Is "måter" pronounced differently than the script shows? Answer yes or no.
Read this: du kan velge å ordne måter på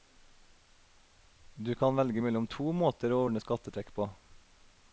yes